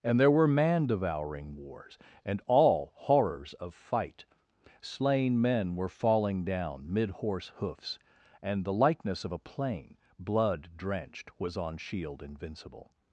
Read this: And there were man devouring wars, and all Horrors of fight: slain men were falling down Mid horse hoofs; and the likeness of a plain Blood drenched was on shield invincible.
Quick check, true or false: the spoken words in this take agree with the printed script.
true